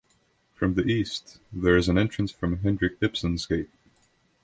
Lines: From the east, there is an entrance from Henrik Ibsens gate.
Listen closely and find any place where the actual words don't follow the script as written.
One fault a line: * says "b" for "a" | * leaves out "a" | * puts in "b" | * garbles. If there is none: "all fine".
all fine